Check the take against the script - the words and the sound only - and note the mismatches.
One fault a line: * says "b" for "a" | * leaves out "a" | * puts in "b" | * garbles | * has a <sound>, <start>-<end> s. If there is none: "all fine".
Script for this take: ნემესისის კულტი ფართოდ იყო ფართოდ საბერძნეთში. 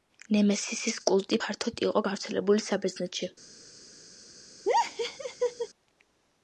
* says "გავრცელებული" for "ფართოდ"
* has a laugh, 4.7-5.7 s